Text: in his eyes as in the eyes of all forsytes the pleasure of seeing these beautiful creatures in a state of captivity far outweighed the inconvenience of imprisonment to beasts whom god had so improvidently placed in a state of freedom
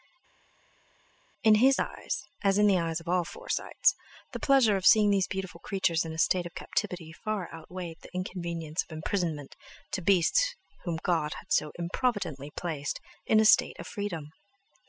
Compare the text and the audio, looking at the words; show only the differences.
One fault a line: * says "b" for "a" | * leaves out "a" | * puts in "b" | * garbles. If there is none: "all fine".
all fine